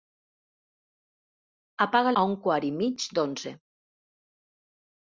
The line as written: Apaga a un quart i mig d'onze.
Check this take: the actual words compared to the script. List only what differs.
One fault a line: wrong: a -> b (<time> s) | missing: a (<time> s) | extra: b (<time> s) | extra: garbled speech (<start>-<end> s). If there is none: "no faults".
no faults